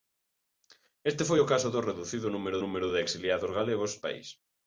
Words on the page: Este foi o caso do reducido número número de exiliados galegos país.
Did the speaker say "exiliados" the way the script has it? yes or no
yes